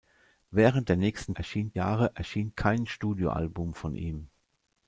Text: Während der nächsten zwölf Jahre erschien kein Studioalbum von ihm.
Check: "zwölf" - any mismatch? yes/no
yes